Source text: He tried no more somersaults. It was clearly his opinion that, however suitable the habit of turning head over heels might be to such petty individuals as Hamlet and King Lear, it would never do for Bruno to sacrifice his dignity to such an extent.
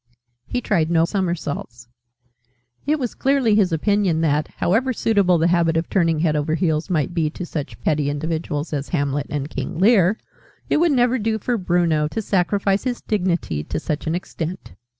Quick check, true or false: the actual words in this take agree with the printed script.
false